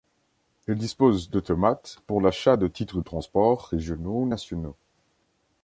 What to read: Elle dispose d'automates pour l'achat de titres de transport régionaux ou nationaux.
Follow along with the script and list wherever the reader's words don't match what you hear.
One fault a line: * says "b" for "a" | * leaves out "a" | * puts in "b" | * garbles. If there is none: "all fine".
all fine